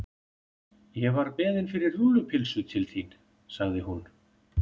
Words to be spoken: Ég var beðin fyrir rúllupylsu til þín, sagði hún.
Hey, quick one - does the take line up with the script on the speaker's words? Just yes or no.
yes